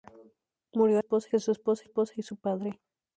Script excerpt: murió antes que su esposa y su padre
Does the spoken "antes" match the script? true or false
false